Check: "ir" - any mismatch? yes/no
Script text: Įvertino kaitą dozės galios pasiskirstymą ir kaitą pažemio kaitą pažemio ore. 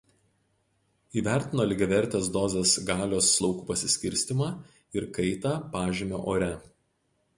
no